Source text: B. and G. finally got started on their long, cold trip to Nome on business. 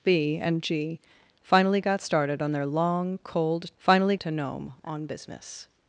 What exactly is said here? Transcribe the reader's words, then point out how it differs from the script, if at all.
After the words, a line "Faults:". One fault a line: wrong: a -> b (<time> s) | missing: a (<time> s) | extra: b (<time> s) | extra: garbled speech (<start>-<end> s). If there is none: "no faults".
B. and G. finally got started on their long, cold finally to Nome on business.
Faults:
wrong: trip -> finally (3.8 s)